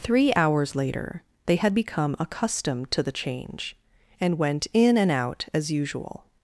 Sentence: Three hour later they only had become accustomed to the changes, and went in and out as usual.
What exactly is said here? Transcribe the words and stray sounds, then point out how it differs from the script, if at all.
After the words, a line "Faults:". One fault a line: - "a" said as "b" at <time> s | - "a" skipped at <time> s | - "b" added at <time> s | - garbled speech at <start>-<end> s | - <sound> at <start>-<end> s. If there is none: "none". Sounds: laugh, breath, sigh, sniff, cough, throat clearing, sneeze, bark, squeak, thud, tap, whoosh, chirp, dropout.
Three hours later they had become accustomed to the change, and went in and out as usual.
Faults:
- "hour" said as "hours" at 0.3 s
- "only" skipped at 1.6 s
- "changes" said as "change" at 3.1 s